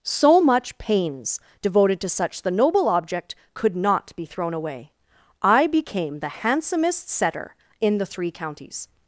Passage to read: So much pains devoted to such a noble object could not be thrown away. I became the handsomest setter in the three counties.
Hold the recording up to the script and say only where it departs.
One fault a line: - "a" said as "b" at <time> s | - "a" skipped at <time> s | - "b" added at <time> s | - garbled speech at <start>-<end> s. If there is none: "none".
- "a" said as "the" at 2.4 s